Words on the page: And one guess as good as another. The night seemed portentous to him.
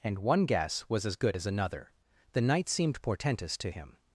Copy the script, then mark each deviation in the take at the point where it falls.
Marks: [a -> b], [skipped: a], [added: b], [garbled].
And one guess [added: was] as good as another. The night seemed portentous to him.